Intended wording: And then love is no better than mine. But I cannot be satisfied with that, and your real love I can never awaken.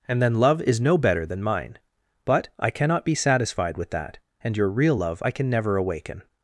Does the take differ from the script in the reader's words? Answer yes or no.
no